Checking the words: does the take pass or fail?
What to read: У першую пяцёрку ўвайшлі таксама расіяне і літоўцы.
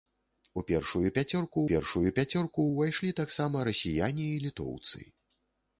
fail